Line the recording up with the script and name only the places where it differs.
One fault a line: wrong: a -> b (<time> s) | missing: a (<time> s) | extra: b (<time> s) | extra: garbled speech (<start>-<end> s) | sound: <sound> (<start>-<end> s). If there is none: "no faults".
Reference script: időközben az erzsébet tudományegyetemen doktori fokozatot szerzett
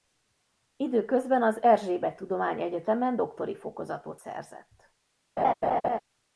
sound: laugh (5.4-6.0 s)